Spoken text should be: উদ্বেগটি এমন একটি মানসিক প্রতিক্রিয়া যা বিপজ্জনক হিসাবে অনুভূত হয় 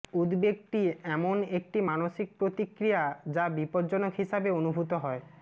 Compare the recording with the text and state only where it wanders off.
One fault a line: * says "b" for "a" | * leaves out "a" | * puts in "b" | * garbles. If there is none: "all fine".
all fine